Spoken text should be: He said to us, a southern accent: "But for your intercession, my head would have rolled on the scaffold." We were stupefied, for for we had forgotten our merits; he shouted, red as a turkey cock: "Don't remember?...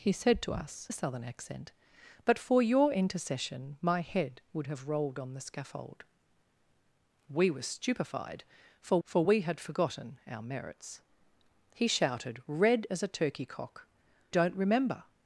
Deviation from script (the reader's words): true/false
false